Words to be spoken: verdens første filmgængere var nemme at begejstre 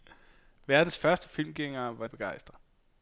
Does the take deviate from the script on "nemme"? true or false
true